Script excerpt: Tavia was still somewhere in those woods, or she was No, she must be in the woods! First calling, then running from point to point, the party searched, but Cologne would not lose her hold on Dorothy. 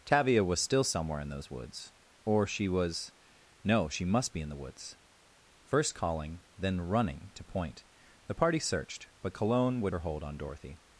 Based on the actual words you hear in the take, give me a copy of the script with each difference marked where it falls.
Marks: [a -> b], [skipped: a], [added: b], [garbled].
Tavia was still somewhere in those woods, or she was No, she must be in the woods! First calling, then running [skipped: from point] to point, the party searched, but Cologne would [skipped: not lose] her hold on Dorothy.